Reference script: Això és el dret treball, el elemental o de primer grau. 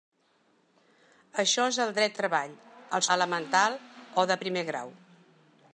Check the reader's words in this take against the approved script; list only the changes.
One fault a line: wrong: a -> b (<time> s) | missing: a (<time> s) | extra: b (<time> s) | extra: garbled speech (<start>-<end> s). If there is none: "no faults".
no faults